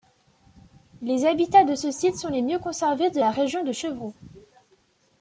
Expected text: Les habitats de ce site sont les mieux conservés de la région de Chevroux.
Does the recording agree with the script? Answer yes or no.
yes